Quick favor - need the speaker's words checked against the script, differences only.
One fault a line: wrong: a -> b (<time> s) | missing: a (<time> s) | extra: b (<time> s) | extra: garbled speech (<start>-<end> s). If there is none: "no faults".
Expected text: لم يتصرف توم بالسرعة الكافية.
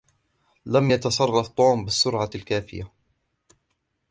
no faults